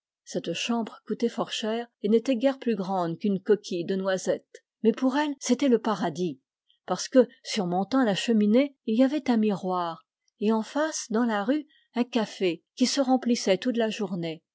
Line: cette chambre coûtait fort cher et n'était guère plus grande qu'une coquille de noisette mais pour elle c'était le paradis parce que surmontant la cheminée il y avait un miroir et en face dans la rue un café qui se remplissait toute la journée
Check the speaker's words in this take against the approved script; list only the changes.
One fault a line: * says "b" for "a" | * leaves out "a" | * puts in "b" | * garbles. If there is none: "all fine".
all fine